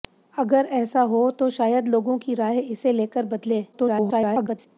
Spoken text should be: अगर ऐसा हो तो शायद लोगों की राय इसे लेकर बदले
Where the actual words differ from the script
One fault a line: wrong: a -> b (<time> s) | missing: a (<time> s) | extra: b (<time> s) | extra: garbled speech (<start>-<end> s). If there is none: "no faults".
extra: garbled speech (3.7-4.7 s)